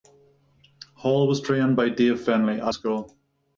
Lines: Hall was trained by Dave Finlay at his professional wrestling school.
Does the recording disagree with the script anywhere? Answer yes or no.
yes